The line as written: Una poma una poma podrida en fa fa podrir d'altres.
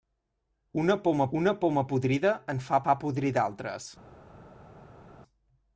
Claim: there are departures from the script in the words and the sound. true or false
false